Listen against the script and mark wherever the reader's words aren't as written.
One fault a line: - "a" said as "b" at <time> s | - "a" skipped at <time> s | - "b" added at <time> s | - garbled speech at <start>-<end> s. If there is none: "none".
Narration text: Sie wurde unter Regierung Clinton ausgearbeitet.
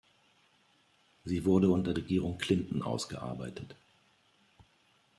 none